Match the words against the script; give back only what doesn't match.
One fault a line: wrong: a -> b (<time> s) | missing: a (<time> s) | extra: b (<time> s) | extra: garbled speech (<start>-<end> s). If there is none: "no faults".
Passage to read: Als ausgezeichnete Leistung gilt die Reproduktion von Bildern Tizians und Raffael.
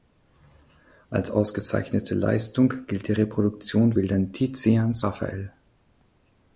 missing: von (3.9 s)
missing: und (5.0 s)